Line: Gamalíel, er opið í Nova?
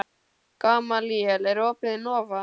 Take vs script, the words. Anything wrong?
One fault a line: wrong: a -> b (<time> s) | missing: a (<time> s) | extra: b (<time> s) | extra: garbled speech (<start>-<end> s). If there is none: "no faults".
no faults